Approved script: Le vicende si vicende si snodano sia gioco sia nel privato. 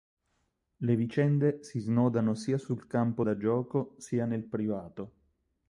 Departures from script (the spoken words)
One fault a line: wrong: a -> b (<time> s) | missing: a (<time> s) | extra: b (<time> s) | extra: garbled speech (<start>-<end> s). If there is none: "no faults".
wrong: vicende si snodano sia -> snodano sia sul campo da (1.8 s)